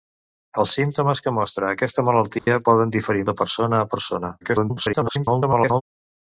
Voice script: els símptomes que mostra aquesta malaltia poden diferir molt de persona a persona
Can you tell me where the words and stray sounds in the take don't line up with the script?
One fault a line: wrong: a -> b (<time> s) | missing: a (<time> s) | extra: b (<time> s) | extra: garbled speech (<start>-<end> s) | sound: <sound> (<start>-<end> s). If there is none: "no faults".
sound: dropout (2.4-2.5 s)
missing: molt (3.3 s)
extra: garbled speech (4.4-5.8 s)